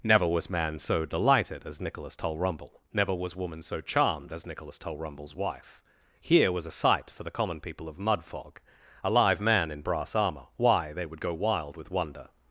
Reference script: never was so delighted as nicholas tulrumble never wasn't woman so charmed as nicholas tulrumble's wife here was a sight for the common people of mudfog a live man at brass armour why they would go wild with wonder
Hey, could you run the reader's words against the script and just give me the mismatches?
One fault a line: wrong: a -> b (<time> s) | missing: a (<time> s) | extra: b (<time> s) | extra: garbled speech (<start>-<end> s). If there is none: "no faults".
extra: man (0.5 s)
wrong: wasn't -> was (3.1 s)
wrong: at -> in (9.7 s)